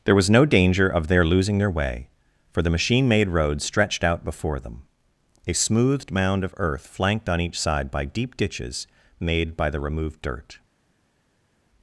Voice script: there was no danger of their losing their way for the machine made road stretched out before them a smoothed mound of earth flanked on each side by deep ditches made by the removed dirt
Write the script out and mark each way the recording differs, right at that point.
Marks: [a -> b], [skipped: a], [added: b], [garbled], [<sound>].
there was no danger of their losing their way for the machine made road stretched out before them a smoothed mound of earth flanked on each side by deep ditches made by the removed dirt